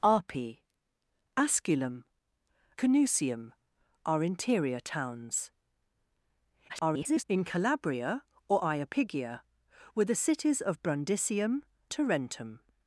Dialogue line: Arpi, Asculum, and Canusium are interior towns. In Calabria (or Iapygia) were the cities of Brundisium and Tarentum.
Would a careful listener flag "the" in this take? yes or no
no